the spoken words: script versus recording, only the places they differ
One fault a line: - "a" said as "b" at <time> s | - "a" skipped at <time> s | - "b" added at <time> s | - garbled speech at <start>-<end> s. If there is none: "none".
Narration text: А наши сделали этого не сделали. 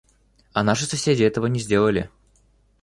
- "сделали" said as "соседи" at 0.9 s